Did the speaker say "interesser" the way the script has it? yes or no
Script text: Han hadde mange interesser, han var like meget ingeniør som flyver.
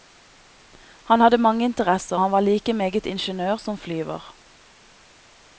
yes